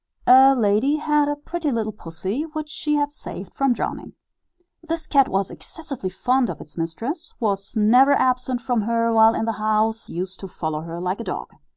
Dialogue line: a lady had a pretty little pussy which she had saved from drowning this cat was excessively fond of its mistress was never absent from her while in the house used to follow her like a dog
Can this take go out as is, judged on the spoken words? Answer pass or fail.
pass